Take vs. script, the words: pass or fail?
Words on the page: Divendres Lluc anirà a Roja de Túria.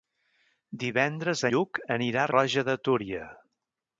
pass